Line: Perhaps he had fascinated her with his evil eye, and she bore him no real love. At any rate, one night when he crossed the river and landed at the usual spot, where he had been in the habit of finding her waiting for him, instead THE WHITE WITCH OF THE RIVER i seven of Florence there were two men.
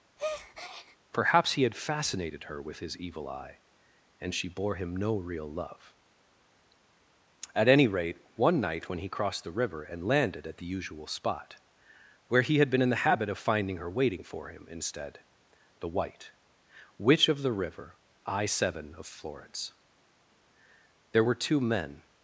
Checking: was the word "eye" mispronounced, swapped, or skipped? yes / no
no